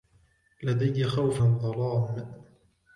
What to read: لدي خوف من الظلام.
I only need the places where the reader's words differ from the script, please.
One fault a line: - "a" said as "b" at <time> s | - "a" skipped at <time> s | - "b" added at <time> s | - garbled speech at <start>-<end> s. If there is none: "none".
- "من" skipped at 1.4 s